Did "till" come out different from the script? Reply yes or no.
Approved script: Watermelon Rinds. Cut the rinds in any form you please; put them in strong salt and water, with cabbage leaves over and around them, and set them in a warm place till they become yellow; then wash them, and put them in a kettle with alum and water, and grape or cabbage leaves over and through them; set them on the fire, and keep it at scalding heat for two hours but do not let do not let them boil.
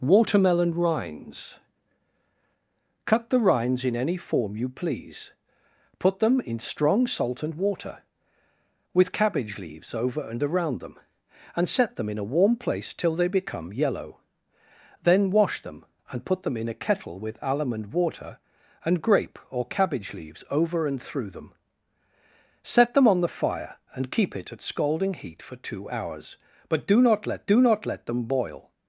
no